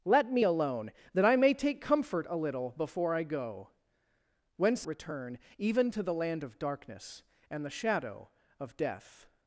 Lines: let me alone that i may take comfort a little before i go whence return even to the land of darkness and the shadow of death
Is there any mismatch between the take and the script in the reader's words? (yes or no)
no